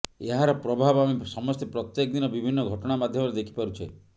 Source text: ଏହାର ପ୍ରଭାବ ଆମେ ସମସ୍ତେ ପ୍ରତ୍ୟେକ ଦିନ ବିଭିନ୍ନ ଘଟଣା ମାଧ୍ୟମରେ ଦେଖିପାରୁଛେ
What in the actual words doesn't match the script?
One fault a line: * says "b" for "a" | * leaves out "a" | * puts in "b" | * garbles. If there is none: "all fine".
all fine